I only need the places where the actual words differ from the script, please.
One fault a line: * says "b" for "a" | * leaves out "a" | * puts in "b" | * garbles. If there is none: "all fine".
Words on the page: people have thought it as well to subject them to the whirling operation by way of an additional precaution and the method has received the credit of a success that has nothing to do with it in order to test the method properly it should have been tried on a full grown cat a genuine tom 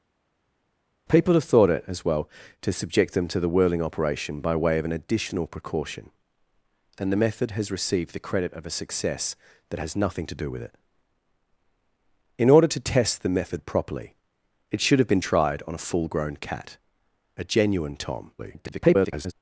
* garbles